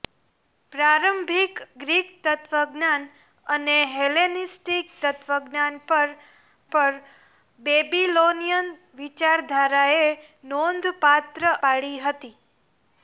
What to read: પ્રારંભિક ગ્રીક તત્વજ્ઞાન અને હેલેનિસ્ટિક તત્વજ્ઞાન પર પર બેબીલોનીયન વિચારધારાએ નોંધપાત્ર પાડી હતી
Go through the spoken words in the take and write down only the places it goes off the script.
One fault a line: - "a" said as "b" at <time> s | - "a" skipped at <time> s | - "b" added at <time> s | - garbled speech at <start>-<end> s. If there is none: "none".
none